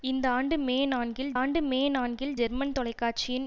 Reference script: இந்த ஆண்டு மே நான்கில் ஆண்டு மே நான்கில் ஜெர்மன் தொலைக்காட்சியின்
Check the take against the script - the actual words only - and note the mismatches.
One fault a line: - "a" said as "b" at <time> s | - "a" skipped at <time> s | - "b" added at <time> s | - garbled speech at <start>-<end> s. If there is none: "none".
none